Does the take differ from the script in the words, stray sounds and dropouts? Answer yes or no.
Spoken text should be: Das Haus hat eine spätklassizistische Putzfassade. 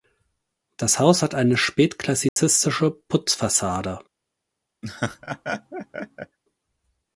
yes